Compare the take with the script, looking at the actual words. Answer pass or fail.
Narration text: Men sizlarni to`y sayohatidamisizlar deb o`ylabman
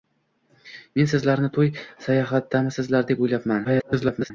fail